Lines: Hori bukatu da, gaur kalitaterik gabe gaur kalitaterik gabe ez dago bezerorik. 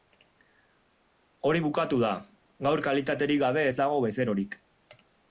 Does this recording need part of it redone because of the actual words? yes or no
yes